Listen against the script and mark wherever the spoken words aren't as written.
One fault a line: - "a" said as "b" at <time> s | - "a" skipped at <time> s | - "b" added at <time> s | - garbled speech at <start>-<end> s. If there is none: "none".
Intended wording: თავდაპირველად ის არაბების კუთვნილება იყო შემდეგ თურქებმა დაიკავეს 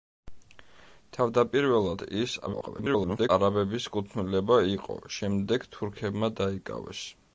- garbled speech at 2.5-3.3 s